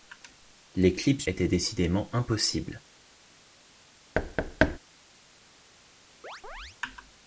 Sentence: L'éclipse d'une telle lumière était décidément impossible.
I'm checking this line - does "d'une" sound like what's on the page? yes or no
no